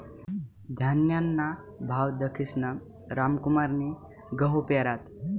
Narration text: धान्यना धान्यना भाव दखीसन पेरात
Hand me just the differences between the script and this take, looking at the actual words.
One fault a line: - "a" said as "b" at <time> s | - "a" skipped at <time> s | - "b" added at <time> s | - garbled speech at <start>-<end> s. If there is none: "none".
- "धान्यना" skipped at 1.5 s
- "रामकुमारनी गहू" added at 3.1 s